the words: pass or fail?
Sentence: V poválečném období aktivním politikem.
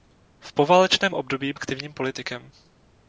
pass